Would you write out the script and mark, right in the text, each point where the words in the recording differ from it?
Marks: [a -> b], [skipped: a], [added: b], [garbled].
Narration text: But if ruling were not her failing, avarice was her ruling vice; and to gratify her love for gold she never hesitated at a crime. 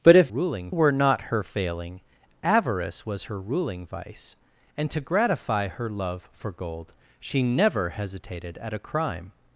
But if ruling were not her failing, avarice was her ruling vice; and to gratify her love for gold she never hesitated at a crime.